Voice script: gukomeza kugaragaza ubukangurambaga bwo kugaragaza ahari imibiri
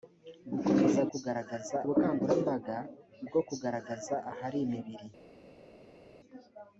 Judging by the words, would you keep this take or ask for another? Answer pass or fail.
pass